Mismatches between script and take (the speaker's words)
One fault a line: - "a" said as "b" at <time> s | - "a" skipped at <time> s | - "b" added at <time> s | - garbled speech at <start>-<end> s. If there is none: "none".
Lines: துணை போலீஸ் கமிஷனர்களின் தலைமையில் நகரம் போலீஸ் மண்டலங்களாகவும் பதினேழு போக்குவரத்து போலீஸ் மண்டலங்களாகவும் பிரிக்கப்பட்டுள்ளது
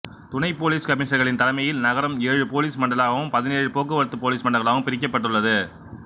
- "ஏழு" added at 2.3 s